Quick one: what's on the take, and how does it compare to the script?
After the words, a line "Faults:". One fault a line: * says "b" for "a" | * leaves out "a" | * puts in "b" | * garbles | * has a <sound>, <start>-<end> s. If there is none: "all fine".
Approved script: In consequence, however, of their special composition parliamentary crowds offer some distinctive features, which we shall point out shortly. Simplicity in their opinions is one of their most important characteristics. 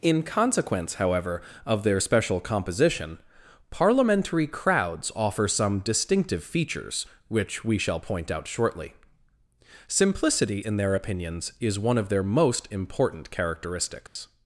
In consequence, however, of their special composition parliamentary crowds offer some distinctive features, which we shall point out shortly. Simplicity in their opinions is one of their most important characteristics.
Faults:
* has a dropout, 14.1-14.2 s